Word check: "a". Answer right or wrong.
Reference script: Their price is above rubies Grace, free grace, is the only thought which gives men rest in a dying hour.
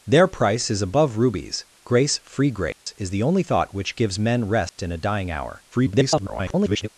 right